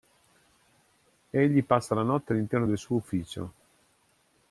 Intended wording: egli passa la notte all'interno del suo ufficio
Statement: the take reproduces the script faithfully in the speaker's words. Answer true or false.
true